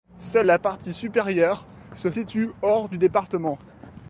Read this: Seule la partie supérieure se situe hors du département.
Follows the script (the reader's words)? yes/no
yes